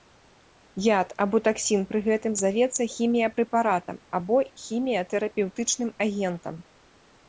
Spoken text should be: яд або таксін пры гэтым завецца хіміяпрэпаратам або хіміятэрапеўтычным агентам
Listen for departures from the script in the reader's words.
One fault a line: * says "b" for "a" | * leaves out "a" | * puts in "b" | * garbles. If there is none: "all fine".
all fine